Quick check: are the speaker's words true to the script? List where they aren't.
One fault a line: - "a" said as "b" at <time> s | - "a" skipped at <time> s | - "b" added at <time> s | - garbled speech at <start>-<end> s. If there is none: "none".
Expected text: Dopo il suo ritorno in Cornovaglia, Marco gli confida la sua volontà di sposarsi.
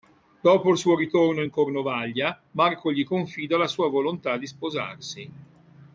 none